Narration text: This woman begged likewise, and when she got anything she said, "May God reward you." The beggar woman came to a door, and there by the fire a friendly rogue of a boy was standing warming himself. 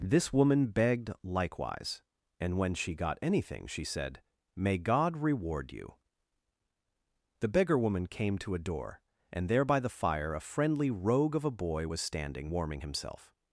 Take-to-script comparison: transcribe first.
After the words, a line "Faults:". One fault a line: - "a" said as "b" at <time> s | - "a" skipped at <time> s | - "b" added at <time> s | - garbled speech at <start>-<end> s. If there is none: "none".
This woman begged likewise, and when she got anything she said, "May God reward you." The beggar woman came to a door, and there by the fire a friendly rogue of a boy was standing warming himself.
Faults:
none